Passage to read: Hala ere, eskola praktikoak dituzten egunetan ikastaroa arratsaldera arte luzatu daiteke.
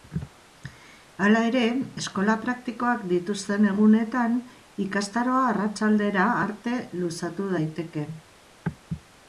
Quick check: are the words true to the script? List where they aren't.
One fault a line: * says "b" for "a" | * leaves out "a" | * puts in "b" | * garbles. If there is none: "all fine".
all fine